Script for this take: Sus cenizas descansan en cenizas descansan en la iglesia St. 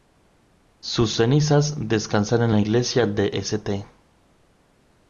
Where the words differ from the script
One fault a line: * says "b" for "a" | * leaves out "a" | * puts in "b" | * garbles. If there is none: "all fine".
* leaves out "cenizas descansan en"
* puts in "de"